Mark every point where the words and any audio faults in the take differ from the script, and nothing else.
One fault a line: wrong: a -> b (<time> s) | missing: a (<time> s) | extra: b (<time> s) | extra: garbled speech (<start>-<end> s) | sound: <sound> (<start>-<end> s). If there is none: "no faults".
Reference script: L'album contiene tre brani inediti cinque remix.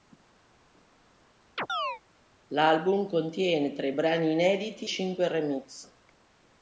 sound: chirp (1.6-2.0 s)